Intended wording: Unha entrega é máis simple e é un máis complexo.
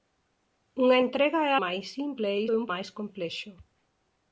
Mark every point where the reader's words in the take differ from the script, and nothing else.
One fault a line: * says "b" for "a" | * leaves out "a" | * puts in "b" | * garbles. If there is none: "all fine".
all fine